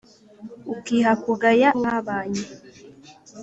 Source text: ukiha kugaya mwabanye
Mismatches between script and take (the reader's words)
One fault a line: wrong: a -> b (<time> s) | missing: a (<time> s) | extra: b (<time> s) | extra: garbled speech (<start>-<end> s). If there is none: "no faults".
no faults